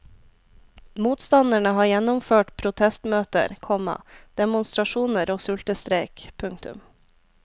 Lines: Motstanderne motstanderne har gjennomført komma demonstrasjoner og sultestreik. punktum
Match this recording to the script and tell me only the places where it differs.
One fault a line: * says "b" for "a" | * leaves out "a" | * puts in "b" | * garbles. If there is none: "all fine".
* leaves out "motstanderne"
* puts in "protestmøter"